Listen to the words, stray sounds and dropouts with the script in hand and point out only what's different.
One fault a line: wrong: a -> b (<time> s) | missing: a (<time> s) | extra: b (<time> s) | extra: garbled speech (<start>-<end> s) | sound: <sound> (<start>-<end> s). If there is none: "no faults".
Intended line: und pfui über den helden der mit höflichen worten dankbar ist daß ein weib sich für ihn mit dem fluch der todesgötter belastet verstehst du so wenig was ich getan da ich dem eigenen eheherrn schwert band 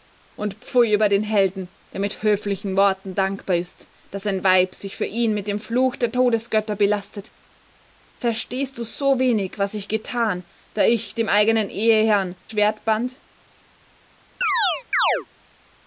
sound: chirp (14.4-15.3 s)